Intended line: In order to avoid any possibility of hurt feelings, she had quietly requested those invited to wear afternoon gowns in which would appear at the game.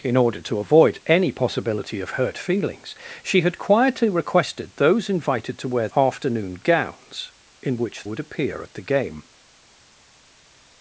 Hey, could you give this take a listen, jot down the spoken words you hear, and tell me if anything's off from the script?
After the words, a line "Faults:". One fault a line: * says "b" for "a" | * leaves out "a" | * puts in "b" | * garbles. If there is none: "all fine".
In order to avoid any possibility of hurt feelings, she had quietly requested those invited to wear afternoon gowns in which would appear at the game.
Faults:
all fine